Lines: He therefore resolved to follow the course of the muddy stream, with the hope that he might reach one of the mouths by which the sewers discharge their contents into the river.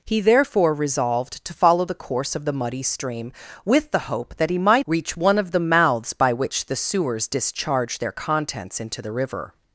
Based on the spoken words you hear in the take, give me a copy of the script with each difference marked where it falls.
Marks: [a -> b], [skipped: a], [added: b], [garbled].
He therefore resolved to follow the course of the muddy stream, with the hope that he might reach one of the mouths by which the sewers discharge their contents into the river.